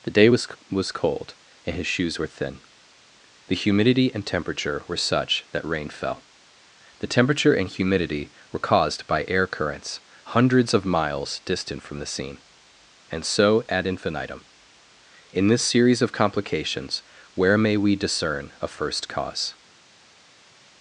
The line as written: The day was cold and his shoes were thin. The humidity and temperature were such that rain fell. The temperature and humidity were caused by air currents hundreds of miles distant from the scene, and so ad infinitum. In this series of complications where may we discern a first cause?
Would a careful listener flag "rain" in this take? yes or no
no